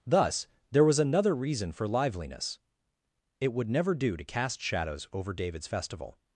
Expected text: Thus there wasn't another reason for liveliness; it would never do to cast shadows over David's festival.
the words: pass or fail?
fail